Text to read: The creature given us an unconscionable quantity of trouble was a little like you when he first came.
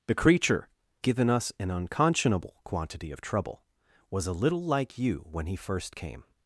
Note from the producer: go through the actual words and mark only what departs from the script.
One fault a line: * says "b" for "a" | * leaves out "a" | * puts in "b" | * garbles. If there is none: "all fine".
all fine